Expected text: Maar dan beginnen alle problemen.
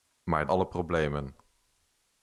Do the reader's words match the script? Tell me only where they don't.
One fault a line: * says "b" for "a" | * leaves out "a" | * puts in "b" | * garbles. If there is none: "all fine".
* leaves out "dan beginnen"